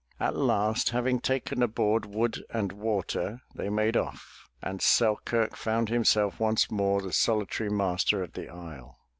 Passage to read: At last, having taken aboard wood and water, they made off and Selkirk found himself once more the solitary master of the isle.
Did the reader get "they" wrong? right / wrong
right